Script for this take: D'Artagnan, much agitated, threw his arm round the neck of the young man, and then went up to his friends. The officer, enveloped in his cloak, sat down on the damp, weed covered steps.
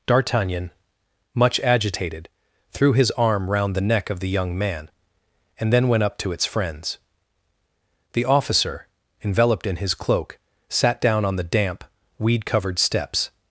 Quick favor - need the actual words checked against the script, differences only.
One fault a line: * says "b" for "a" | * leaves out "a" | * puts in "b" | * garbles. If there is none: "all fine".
* says "its" for "his"